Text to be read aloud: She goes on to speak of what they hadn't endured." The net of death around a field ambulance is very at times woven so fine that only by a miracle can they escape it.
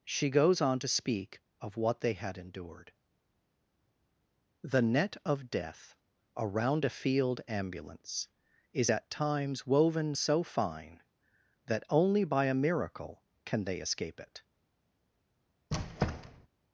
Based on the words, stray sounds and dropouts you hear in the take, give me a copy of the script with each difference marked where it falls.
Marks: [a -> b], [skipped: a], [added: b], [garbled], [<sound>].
She goes on to speak of what they [hadn't -> had] endured." The net of death around a field ambulance is [skipped: very] at times woven so fine that only by a miracle can they escape it. [squeak]